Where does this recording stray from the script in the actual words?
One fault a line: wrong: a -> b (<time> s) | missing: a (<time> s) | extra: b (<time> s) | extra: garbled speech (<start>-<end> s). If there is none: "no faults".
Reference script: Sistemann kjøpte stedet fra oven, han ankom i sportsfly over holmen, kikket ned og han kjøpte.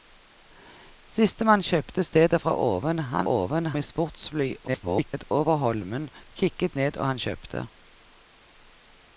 wrong: ankom -> oven (3.3 s)
extra: garbled speech (4.7-5.3 s)